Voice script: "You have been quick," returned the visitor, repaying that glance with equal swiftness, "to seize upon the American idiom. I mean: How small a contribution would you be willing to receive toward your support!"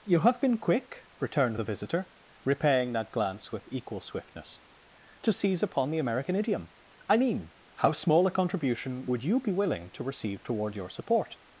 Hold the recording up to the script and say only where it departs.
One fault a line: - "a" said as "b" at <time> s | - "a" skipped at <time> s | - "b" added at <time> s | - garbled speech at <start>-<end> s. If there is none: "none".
none